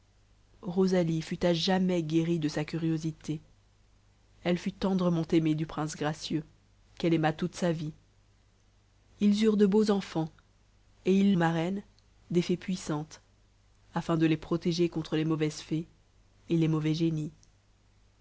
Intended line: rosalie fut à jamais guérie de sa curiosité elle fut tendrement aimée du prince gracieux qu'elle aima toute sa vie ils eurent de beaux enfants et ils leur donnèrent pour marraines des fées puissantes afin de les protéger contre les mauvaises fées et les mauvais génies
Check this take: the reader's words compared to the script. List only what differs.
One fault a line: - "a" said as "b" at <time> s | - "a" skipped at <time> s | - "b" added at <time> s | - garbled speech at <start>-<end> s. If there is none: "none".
- "leur donnèrent pour" skipped at 11.3 s